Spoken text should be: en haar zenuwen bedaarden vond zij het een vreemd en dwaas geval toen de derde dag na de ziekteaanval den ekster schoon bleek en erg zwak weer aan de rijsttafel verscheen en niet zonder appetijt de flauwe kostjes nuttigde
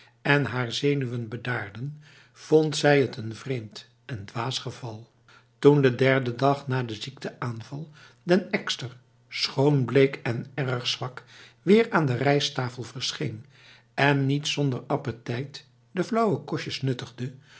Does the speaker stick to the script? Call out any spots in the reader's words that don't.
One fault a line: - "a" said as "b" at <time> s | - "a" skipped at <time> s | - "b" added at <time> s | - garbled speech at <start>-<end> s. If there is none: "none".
none